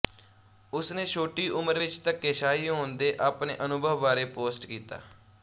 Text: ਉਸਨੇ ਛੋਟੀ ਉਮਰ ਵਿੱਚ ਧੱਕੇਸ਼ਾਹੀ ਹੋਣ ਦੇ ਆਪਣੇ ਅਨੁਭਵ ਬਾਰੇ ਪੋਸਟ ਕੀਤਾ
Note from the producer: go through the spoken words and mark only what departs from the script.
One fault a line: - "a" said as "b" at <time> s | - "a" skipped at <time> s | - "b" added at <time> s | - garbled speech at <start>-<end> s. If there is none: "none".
none